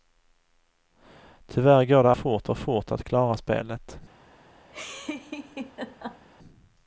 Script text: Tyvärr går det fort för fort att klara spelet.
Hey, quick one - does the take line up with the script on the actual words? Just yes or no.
yes